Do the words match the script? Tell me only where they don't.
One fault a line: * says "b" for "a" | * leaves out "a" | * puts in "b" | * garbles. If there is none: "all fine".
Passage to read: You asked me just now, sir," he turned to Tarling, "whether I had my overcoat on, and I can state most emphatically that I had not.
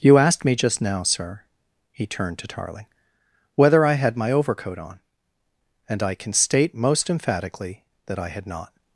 all fine